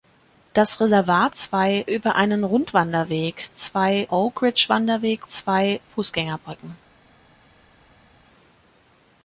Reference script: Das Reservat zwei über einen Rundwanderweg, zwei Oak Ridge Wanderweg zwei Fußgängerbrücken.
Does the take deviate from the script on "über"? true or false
false